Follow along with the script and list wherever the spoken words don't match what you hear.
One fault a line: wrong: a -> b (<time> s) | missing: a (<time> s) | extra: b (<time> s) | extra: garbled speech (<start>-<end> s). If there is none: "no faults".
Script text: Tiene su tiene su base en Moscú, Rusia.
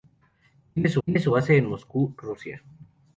no faults